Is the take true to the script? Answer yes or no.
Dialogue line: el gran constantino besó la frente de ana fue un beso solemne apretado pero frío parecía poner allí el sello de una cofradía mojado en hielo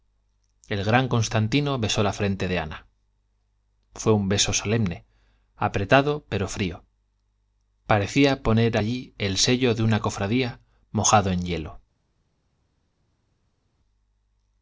yes